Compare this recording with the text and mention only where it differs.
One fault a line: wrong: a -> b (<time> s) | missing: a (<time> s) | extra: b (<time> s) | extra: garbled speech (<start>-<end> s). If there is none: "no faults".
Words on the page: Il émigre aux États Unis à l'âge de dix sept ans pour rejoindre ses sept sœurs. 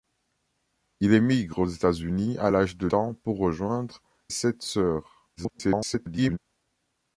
missing: dix sept (2.9 s)
missing: ses (4.0 s)
extra: garbled speech (5.4-6.4 s)